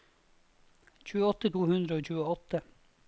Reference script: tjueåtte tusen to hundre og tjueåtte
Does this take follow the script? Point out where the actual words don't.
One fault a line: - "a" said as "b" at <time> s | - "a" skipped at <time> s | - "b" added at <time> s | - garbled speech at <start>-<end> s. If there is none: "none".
- "tusen" skipped at 1.5 s